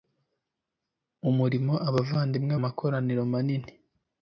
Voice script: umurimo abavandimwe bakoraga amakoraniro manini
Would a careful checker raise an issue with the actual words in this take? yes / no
yes